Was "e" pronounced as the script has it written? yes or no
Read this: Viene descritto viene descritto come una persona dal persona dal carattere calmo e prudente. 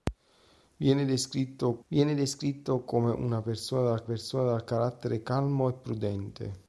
yes